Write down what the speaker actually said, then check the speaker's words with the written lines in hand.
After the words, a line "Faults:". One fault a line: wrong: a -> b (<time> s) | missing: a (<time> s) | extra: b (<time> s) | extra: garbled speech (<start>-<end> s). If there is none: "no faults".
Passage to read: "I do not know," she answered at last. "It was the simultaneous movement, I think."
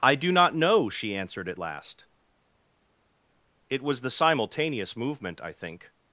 "I do not know," she answered at last. "It was the simultaneous movement, I think."
Faults:
no faults